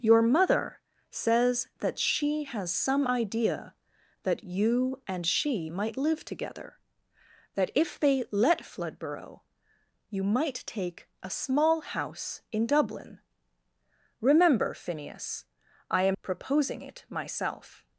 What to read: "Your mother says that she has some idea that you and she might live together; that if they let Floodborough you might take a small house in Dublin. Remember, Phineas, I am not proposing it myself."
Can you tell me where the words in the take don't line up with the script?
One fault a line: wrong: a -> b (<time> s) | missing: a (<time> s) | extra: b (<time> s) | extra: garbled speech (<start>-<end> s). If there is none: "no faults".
missing: not (16.2 s)